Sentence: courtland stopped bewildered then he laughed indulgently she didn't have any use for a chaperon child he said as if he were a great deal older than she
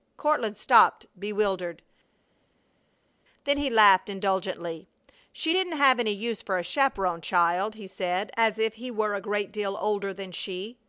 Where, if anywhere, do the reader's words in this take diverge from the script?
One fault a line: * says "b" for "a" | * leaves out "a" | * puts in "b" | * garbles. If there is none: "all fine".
all fine